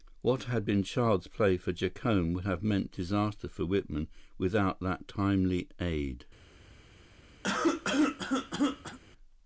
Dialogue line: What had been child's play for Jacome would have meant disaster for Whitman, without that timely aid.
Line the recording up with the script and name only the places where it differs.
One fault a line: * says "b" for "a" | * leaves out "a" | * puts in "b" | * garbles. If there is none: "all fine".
all fine